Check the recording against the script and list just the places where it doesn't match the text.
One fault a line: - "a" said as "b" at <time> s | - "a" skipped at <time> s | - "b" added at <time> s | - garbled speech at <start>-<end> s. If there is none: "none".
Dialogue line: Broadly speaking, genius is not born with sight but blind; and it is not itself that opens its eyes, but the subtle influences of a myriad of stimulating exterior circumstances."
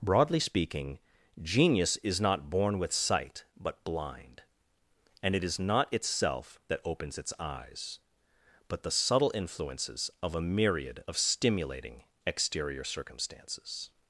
none